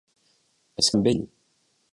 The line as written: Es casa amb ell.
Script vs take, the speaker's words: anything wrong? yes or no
yes